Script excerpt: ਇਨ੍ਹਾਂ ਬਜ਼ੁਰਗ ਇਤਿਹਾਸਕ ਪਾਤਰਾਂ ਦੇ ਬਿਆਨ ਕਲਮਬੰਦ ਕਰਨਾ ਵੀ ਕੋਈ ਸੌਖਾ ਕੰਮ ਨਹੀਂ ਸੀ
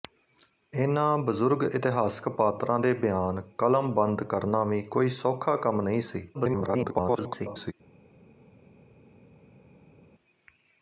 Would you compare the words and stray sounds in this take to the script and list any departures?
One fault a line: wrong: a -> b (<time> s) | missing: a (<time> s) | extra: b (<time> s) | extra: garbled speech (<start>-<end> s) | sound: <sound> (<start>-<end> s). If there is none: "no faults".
extra: garbled speech (6.3-7.7 s)